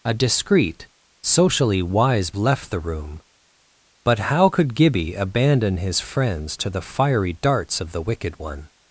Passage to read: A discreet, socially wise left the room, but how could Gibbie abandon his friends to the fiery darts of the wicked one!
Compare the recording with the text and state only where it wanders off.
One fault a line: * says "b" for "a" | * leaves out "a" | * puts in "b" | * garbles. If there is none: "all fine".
all fine